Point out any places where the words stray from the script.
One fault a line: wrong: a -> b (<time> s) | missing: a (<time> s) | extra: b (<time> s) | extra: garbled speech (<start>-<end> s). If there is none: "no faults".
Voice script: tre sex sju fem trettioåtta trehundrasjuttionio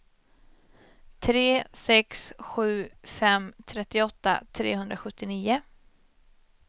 no faults